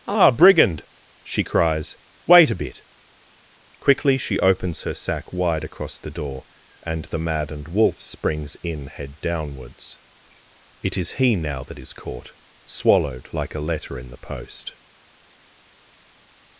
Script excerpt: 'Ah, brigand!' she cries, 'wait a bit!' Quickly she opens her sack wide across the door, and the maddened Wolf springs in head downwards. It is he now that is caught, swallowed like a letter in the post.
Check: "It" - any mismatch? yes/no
no